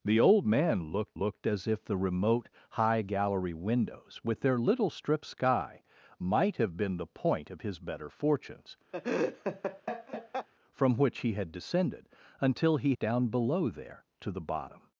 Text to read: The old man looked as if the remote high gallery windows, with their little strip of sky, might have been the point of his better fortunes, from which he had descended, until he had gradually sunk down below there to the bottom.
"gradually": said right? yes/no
no